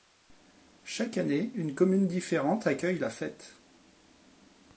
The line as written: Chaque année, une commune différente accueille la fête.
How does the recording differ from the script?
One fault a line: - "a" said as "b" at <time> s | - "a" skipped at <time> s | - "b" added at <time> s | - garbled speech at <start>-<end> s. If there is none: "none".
none